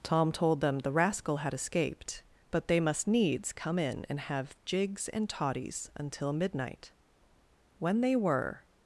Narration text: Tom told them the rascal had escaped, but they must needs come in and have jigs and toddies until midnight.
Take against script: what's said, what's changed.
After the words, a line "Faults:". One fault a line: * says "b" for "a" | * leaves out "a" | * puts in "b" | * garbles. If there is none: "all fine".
Tom told them the rascal had escaped, but they must needs come in and have jigs and toddies until midnight. When they were
Faults:
* puts in "When they were"